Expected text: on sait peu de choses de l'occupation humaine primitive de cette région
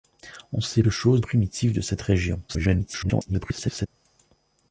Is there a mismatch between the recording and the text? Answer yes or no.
yes